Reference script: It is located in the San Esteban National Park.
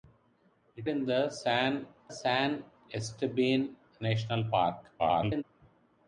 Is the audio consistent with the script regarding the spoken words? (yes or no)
no